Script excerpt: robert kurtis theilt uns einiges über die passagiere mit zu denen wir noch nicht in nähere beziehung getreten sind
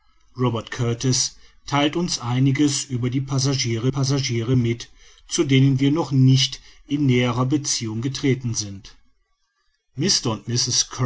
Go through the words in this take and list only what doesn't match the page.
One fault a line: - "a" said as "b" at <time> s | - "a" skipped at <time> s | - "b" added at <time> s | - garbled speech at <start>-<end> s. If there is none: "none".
- "passagiere" added at 3.9 s